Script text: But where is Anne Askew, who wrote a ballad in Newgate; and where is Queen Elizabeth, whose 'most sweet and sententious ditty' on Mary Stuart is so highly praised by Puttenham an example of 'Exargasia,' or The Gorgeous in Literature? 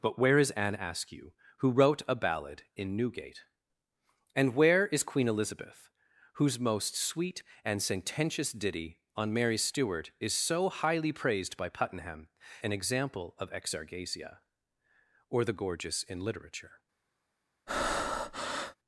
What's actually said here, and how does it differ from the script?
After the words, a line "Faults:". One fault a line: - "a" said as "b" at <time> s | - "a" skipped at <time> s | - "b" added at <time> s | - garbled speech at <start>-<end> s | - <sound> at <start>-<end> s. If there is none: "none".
But where is Anne Askew, who wrote a ballad in Newgate; and where is Queen Elizabeth, whose 'most sweet and sententious ditty' on Mary Stuart is so highly praised by Puttenham an example of 'Exargasia,' or The Gorgeous in Literature?
Faults:
- breath at 17.7-18.8 s